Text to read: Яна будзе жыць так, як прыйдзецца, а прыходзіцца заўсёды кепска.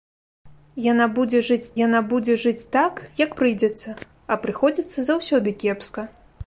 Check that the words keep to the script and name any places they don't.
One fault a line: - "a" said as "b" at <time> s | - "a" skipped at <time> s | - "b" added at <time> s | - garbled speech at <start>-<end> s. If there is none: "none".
- "яна будзе жыць" added at 1.8 s